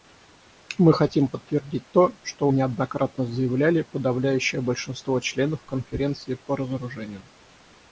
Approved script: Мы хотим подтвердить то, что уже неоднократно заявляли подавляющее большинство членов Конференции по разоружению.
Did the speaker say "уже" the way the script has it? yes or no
no